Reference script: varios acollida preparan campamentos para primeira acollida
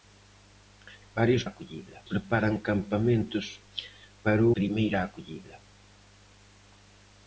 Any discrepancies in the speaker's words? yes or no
no